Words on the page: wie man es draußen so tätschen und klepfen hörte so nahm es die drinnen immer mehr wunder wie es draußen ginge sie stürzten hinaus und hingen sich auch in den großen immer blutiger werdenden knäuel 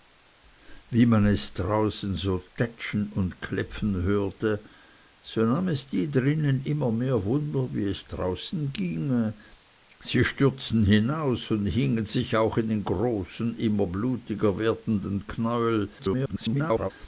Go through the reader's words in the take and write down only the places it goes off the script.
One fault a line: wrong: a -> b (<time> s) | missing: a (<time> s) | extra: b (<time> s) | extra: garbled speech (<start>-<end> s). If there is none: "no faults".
extra: garbled speech (16.0-16.9 s)